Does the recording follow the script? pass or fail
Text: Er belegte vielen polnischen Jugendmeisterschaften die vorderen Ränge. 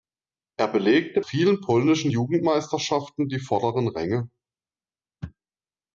pass